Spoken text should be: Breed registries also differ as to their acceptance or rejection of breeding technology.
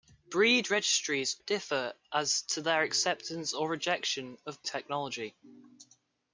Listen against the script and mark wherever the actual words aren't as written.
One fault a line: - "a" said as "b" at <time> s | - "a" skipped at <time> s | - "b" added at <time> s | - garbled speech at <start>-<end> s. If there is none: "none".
- "also" skipped at 1.4 s
- "breeding" skipped at 4.6 s